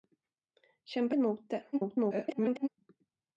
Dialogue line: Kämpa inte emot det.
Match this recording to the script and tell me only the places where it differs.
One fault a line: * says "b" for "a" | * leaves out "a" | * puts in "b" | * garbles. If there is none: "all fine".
* leaves out "inte"
* garbles